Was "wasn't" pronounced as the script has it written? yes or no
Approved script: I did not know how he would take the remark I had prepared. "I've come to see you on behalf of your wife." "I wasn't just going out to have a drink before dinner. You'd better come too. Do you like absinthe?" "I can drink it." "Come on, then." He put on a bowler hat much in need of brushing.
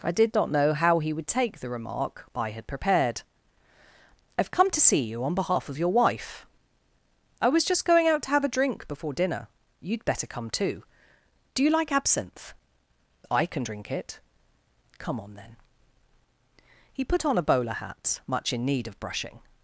no